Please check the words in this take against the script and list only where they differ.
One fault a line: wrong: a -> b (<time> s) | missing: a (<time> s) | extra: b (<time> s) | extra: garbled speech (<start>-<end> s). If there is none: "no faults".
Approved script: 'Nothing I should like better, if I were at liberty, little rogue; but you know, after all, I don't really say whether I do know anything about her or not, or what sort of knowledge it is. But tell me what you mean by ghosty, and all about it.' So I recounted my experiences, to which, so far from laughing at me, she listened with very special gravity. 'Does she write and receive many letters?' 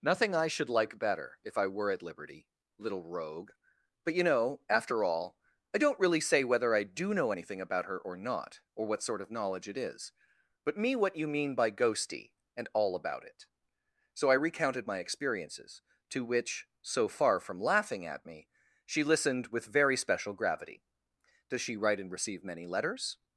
missing: tell (10.8 s)